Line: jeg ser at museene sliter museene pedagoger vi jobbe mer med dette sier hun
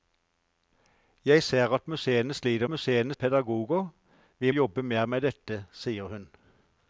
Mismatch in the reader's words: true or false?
false